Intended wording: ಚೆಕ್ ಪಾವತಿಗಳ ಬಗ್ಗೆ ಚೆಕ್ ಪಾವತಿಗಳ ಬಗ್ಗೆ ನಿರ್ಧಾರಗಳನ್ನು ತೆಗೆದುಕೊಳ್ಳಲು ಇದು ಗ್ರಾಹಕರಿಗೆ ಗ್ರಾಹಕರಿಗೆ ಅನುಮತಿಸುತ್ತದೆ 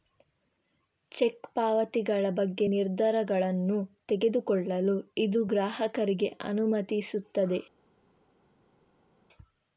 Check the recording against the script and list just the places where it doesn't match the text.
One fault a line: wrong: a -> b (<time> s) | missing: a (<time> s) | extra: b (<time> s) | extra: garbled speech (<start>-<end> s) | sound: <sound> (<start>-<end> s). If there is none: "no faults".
missing: ಚೆಕ್ ಪಾವತಿಗಳ ಬಗ್ಗೆ (2.7 s)
missing: ಗ್ರಾಹಕರಿಗೆ (6.3 s)